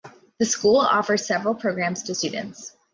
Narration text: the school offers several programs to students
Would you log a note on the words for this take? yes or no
no